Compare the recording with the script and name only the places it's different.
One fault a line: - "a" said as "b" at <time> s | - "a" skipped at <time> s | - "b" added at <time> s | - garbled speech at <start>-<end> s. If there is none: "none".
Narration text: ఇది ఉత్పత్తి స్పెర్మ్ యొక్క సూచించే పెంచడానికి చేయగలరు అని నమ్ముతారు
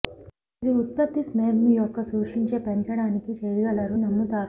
- "అని" skipped at 4.0 s